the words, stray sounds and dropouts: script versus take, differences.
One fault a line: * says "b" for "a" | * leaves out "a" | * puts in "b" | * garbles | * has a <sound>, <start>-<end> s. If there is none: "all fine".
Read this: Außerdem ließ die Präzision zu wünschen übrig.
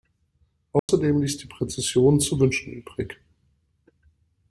* has a dropout, 0.8-0.9 s